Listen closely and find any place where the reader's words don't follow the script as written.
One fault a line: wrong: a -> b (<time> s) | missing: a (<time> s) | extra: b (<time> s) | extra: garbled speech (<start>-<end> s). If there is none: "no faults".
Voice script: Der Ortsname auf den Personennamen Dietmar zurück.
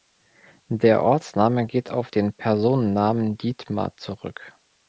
extra: geht (1.6 s)